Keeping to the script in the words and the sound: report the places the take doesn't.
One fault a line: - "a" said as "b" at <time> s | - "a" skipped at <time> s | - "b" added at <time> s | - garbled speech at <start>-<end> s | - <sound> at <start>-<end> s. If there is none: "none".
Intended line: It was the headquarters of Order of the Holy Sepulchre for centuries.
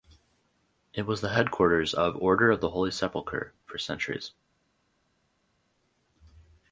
none